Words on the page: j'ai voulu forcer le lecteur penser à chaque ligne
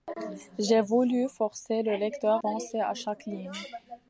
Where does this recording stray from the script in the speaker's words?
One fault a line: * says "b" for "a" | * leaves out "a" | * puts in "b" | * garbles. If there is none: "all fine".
all fine